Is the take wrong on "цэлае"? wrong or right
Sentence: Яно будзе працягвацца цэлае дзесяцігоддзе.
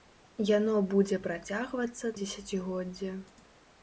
wrong